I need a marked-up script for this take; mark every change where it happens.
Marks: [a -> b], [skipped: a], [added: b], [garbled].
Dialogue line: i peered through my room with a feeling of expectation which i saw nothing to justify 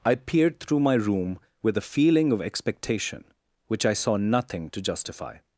i peered through my room with a feeling of expectation which i saw nothing to justify